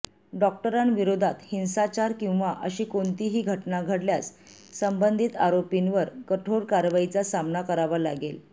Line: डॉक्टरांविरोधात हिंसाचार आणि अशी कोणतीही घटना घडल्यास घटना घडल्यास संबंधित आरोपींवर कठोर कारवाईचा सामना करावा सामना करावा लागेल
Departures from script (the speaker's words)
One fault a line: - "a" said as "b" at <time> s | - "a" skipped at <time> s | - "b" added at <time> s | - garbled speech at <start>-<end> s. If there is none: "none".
- "आणि" said as "किंवा" at 2.2 s
- "घटना घडल्यास" skipped at 4.3 s
- "सामना करावा" skipped at 8.0 s